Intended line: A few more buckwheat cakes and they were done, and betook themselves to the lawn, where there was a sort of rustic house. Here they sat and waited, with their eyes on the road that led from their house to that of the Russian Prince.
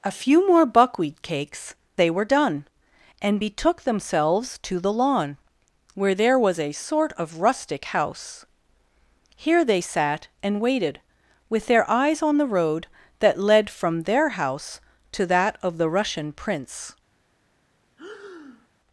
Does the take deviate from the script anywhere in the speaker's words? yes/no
yes